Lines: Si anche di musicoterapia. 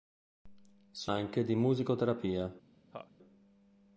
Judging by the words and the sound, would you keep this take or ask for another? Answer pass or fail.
fail